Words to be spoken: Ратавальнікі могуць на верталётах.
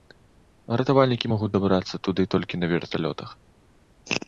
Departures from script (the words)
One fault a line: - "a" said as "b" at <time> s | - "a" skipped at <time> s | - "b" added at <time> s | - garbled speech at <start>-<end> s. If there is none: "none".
- "дабрацца туды толькі" added at 1.6 s